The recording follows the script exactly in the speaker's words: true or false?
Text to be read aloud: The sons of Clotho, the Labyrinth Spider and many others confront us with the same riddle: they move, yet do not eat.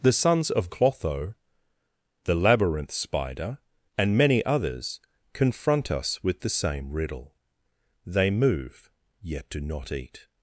true